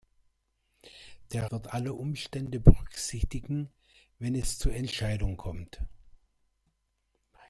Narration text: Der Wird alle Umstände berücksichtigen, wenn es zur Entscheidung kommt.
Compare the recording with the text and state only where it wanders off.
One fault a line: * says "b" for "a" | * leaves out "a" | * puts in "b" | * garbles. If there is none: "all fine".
all fine